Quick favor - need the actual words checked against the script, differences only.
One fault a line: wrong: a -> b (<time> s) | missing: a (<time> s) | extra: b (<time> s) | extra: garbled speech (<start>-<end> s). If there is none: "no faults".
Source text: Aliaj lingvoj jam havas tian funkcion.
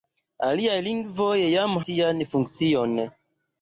missing: havas (1.8 s)